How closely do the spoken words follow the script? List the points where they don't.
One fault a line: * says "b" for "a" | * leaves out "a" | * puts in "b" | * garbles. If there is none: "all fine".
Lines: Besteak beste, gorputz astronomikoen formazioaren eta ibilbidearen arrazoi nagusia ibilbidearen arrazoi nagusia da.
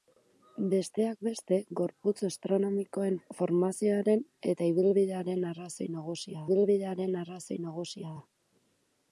all fine